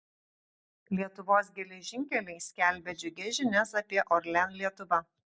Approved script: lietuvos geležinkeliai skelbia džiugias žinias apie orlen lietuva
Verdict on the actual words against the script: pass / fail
pass